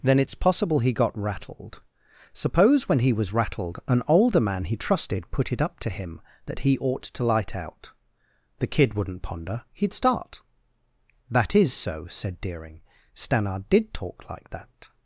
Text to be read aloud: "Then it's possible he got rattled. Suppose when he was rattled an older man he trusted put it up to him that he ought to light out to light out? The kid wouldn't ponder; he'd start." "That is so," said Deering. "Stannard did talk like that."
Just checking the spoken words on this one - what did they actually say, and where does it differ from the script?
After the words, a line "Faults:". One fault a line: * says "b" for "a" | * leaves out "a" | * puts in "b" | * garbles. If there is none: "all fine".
"Then it's possible he got rattled. Suppose when he was rattled an older man he trusted put it up to him that he ought to light out? The kid wouldn't ponder; he'd start." "That is so," said Deering. "Stannard did talk like that."
Faults:
* leaves out "to light out"